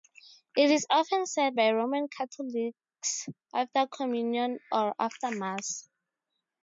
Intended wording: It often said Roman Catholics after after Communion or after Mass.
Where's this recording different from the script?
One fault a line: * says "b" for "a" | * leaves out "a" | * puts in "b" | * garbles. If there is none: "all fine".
* puts in "is"
* puts in "by"
* leaves out "after"